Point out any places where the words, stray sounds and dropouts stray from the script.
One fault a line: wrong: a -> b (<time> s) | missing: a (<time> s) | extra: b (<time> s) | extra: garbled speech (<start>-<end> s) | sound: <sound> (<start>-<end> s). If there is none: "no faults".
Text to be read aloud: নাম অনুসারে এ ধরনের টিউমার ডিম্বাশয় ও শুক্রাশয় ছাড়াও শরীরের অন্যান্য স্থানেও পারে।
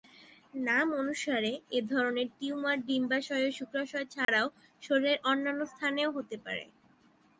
sound: dropout (4.2-4.3 s)
extra: হতে (6.2 s)